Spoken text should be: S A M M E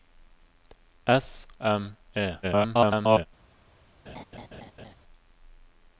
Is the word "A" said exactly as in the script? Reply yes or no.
no